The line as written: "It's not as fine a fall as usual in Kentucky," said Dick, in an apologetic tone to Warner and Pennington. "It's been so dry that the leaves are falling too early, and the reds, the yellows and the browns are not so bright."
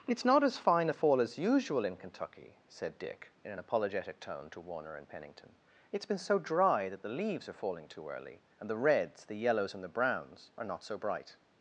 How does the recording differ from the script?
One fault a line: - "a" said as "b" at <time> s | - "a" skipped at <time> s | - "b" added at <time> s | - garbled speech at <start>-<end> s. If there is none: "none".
none